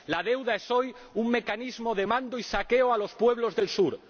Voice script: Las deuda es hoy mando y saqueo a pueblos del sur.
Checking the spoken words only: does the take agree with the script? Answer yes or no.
no